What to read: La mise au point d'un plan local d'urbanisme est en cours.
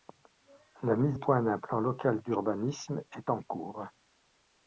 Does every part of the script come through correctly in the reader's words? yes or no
no